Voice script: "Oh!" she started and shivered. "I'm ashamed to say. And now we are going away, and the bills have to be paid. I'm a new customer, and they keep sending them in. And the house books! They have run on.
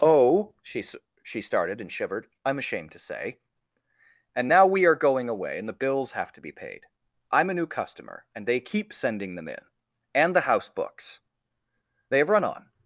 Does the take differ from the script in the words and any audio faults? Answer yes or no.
yes